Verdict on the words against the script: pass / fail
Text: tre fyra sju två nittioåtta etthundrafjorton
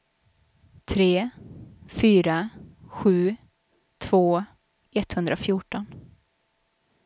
fail